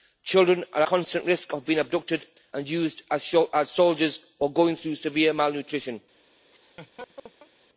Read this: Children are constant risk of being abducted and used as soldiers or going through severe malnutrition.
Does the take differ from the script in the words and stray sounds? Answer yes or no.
yes